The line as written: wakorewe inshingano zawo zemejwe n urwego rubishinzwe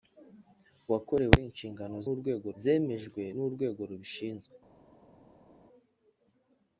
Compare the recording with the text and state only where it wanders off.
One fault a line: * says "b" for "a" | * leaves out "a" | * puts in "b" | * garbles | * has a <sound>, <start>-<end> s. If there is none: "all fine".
* says "urwego" for "zawo"